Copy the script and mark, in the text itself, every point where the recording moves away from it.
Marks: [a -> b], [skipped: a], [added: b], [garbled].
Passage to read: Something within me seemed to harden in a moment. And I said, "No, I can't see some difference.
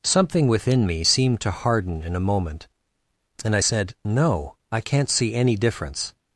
Something within me seemed to harden in a moment. And I said, "No, I can't see [some -> any] difference.